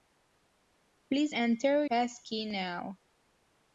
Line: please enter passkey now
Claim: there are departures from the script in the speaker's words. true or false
false